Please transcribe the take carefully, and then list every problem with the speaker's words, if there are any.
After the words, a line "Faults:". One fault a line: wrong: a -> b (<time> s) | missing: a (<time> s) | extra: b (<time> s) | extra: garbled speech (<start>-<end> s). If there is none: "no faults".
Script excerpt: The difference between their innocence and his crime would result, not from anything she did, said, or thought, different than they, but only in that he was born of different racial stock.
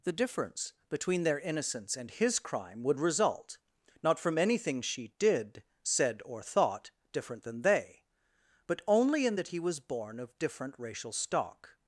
The difference between their innocence and his crime would result, not from anything she did, said, or thought, different than they, but only in that he was born of different racial stock.
Faults:
no faults